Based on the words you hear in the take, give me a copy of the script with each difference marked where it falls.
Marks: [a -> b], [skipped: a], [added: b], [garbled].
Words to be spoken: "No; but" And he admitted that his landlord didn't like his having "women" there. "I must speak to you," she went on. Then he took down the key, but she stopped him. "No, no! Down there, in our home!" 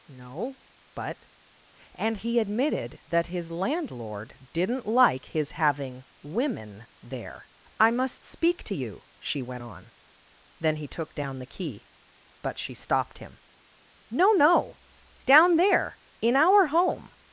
"No; but" And he admitted that his landlord didn't like his having "women" there. "I must speak to you," she went on. Then he took down the key, but she stopped him. "No, no! Down there, in our home!"